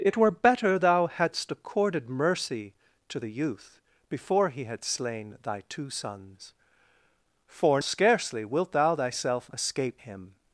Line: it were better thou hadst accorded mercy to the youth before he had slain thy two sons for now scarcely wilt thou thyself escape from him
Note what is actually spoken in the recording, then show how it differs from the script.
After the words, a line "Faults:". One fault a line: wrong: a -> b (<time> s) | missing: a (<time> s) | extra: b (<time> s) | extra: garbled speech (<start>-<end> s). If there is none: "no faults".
it were better thou hadst accorded mercy to the youth before he had slain thy two sons for scarcely wilt thou thyself escape him
Faults:
missing: now (7.8 s)
missing: from (10.0 s)